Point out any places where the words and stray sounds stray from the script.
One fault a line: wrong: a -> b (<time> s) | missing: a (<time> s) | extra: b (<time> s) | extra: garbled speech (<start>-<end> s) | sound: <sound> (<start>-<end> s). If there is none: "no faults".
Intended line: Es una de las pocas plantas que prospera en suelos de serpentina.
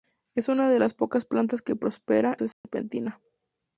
missing: en suelos (2.4 s)
sound: dropout (2.5-2.6 s)